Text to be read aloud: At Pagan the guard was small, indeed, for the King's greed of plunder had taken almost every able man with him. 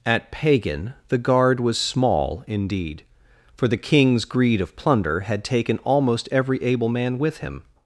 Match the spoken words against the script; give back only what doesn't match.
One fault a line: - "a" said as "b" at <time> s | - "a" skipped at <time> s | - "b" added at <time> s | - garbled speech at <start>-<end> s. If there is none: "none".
none